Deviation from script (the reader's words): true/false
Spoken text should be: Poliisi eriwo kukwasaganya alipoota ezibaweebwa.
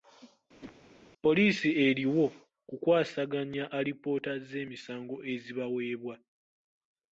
true